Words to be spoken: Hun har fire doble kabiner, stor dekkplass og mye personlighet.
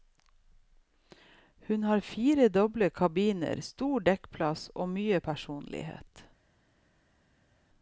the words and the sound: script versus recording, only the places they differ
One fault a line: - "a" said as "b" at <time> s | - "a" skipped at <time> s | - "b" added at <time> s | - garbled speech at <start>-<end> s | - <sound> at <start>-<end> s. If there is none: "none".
none